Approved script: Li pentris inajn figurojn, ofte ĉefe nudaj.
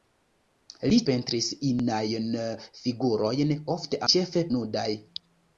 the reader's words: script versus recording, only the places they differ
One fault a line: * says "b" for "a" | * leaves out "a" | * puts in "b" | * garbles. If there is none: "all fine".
all fine